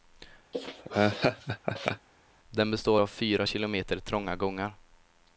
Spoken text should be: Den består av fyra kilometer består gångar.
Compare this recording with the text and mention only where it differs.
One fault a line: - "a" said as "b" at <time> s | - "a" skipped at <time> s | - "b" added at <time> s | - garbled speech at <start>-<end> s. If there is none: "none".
- "består" said as "trånga" at 4.0 s